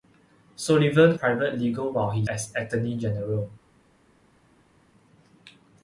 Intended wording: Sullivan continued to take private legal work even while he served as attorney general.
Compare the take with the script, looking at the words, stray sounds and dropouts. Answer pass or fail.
fail